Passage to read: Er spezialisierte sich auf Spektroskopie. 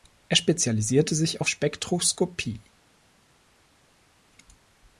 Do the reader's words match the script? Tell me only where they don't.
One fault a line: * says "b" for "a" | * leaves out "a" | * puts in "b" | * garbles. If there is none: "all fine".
all fine